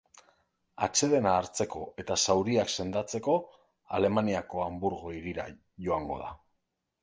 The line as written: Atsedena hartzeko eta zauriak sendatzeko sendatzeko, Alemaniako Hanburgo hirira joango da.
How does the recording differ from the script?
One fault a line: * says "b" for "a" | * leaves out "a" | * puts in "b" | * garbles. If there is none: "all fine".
* leaves out "sendatzeko"